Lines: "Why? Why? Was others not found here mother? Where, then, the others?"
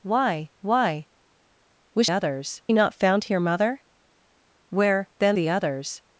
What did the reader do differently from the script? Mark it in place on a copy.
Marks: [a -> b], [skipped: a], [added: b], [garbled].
"Why? Why? Was others not found here mother? Where, then, the others?"